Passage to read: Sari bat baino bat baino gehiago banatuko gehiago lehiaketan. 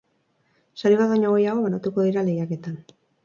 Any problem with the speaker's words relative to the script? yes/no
yes